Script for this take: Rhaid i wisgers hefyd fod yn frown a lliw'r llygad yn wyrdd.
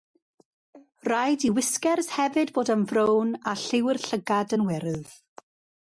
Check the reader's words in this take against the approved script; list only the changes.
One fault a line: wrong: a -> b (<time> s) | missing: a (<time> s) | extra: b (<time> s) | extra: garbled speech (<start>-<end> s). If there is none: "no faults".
no faults